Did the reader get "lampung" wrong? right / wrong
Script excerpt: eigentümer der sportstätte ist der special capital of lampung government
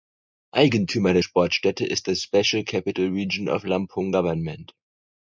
right